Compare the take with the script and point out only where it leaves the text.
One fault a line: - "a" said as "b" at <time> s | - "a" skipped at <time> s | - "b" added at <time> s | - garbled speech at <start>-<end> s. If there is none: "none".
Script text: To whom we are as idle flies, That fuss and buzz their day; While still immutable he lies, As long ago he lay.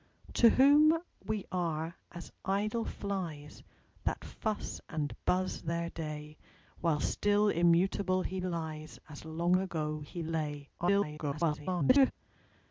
- garbled speech at 10.8-12.1 s